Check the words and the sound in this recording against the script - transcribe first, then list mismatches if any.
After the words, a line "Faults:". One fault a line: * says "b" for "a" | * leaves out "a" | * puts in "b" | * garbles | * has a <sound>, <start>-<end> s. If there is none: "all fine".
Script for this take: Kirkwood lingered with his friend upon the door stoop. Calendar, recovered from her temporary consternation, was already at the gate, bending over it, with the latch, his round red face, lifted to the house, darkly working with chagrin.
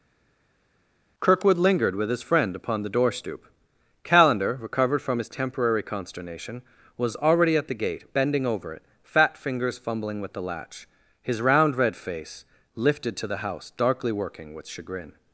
Kirkwood lingered with his friend upon the door stoop. Calendar, recovered from his temporary consternation, was already at the gate, bending over it, fat fingers fumbling with the latch, his round red face, lifted to the house, darkly working with chagrin.
Faults:
* says "his" for "her"
* puts in "fat fingers fumbling"